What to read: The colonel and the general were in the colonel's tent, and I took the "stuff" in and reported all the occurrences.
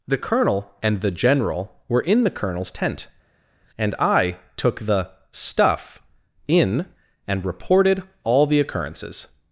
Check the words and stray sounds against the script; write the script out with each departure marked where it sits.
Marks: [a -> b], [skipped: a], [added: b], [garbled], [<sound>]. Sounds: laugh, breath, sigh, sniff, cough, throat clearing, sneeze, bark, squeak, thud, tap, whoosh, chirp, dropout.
The colonel and the general were in the colonel's tent, and I took the "stuff" in and reported all the occurrences.